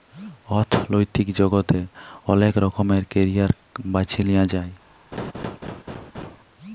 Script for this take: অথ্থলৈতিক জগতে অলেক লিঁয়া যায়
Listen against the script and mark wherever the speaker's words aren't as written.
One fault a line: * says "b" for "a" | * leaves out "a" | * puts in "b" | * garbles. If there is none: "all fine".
* puts in "রকমের ক্যারিয়ার বাছে"